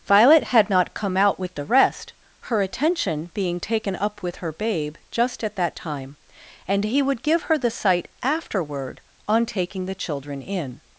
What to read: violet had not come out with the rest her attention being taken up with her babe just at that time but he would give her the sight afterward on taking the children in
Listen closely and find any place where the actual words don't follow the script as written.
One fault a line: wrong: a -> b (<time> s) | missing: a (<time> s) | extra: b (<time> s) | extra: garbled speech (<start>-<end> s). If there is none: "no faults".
wrong: but -> and (6.7 s)